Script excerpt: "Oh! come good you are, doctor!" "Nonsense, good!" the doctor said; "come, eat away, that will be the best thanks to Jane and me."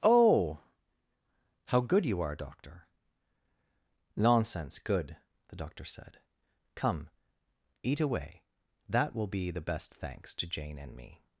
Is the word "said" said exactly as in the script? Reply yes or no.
yes